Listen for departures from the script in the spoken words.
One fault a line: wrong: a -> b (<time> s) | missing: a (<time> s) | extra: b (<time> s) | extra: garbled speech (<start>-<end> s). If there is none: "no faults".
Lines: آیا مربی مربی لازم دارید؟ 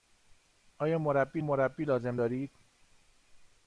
no faults